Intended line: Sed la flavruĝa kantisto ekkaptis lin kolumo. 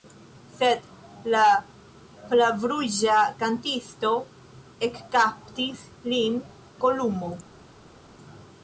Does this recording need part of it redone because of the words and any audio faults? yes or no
no